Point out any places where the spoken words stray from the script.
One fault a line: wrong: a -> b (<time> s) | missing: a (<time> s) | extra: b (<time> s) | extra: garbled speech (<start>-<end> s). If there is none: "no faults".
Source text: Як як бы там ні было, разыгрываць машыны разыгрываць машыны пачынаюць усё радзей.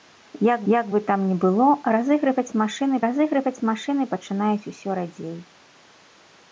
no faults